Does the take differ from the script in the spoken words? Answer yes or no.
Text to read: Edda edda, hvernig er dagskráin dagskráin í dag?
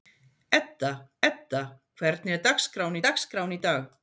no